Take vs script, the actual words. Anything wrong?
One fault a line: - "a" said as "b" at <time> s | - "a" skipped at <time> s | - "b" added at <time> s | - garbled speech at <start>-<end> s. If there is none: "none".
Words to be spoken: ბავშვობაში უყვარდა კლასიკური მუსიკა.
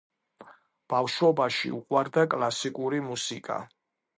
none